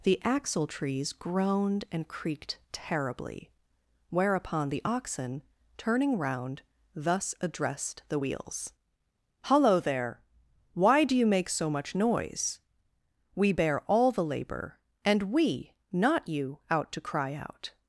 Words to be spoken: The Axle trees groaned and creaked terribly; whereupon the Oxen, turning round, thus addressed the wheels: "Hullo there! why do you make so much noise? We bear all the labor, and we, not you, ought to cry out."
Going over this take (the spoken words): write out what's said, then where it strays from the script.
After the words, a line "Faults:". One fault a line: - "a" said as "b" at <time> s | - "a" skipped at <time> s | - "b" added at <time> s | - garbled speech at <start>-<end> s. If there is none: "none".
The Axle trees groaned and creaked terribly; whereupon the Oxen, turning round, thus addressed the wheels: "Hullo there! why do you make so much noise? We bear all the labor, and we, not you, out to cry out."
Faults:
- "ought" said as "out" at 16.7 s